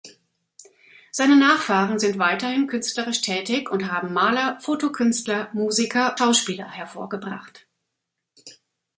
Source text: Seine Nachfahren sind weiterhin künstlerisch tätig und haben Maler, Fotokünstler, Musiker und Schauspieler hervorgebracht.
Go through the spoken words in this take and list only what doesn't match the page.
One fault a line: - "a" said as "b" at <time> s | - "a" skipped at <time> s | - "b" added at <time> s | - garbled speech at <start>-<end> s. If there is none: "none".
- "und" skipped at 6.2 s